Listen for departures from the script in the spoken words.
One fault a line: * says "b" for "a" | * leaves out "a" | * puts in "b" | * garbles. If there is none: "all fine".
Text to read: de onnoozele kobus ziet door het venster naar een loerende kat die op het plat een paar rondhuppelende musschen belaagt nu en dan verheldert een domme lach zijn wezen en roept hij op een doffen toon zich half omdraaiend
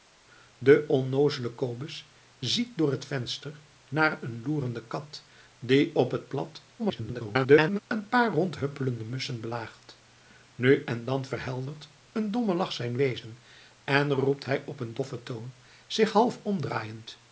* garbles